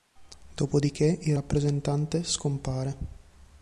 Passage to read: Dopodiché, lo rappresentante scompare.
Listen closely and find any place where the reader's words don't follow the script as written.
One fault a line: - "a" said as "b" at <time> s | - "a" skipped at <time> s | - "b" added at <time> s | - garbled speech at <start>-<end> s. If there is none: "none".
- "lo" said as "il" at 1.2 s